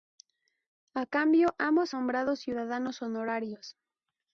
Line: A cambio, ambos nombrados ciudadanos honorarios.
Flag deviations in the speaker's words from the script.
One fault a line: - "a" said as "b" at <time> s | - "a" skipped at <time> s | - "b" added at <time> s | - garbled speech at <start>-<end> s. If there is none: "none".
none